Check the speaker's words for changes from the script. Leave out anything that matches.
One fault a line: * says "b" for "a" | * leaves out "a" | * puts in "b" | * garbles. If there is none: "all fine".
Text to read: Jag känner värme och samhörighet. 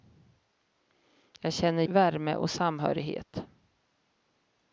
all fine